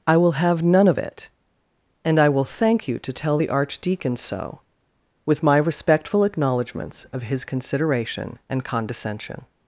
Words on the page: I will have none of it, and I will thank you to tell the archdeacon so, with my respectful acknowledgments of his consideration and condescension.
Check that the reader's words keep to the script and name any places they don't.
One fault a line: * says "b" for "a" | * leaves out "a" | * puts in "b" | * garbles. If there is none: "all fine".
all fine